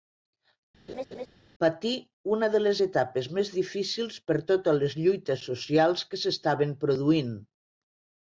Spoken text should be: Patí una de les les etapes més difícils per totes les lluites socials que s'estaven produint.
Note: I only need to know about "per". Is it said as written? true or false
true